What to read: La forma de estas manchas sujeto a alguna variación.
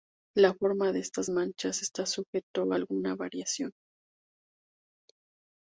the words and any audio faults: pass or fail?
fail